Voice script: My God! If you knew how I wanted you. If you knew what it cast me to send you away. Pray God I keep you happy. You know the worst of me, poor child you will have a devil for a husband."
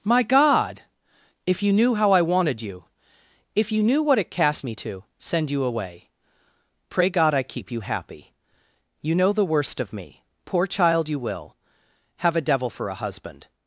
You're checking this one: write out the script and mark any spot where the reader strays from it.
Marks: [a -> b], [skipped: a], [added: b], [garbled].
My God! If you knew how I wanted you. If you knew what it cast me to send you away. Pray God I keep you happy. You know the worst of me, poor child you will have a devil for a husband."